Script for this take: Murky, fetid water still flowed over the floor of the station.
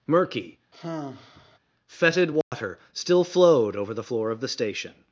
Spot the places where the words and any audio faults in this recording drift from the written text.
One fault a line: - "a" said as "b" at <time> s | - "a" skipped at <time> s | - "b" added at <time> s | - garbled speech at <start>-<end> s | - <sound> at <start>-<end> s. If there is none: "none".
- sigh at 0.7-1.6 s
- dropout at 2.4-2.5 s